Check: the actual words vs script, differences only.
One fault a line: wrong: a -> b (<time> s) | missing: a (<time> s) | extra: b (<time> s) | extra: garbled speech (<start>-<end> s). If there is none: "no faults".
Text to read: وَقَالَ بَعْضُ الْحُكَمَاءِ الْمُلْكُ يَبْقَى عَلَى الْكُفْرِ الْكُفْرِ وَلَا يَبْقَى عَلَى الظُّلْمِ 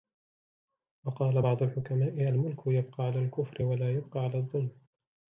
missing: الْكُفْرِ (3.6 s)